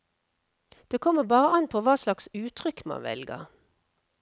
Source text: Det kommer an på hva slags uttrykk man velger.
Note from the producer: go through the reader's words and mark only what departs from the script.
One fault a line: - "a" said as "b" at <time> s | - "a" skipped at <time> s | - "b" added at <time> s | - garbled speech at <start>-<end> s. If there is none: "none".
- "bare" added at 1.3 s